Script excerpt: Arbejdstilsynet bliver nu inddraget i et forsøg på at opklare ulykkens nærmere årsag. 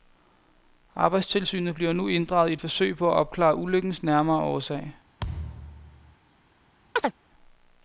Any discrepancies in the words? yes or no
no